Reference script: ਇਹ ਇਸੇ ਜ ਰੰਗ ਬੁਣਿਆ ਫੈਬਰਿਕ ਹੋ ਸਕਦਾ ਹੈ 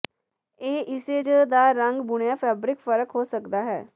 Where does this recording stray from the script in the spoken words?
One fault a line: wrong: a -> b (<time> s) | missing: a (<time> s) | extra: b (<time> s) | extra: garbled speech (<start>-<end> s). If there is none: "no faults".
extra: ਦਾ (1.5 s)
extra: ਫ਼ਰਕ (2.8 s)